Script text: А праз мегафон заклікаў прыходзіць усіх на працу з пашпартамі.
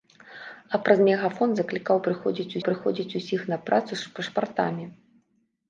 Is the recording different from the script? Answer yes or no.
yes